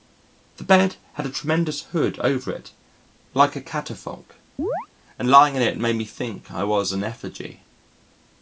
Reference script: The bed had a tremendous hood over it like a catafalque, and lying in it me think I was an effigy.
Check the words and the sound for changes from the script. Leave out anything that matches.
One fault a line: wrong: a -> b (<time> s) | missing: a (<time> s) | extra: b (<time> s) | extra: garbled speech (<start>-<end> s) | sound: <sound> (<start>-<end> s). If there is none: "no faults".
sound: chirp (4.6-4.9 s)
extra: made (5.8 s)